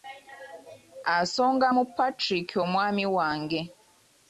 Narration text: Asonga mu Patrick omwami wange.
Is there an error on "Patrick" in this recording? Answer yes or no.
no